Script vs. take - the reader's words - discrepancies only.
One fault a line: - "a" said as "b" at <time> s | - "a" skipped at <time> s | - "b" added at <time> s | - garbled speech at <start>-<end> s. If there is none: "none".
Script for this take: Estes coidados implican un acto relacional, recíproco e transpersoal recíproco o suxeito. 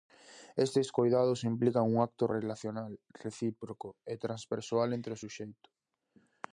- "recíproco" said as "entre" at 5.0 s